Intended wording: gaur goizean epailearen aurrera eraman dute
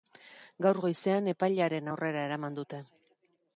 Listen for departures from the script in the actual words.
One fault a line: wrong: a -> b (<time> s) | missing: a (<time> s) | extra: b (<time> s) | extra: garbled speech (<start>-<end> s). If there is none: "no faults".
no faults